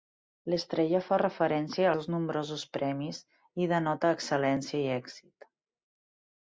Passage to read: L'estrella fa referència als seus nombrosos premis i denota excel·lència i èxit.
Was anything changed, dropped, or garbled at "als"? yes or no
yes